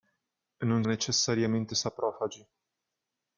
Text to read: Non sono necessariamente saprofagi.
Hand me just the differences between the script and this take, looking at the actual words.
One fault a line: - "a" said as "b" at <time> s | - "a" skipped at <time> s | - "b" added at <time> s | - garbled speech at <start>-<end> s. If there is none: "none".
- "sono" skipped at 0.8 s